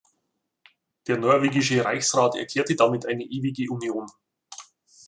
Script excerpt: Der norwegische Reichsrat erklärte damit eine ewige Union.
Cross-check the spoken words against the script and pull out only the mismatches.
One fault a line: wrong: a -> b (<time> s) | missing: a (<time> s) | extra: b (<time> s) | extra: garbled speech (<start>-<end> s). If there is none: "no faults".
no faults